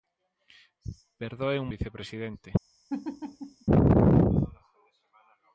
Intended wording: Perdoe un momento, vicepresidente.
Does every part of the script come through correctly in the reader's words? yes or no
no